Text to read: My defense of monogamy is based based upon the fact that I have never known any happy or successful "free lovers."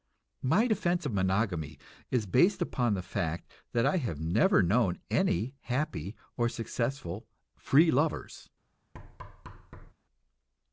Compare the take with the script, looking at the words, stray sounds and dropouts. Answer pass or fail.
fail